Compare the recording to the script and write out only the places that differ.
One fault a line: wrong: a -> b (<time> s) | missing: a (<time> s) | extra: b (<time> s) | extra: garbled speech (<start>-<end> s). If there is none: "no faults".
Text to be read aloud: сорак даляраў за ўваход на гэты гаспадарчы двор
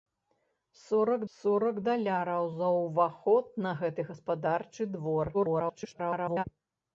extra: сорак (1.4 s)
extra: garbled speech (5.3-6.4 s)